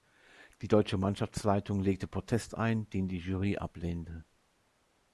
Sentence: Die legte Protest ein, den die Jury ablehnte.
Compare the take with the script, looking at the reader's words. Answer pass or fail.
fail